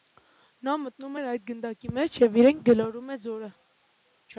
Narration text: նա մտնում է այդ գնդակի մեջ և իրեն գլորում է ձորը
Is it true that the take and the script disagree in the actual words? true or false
false